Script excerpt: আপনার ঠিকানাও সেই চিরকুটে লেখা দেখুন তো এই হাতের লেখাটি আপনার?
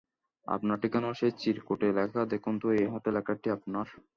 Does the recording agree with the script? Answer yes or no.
yes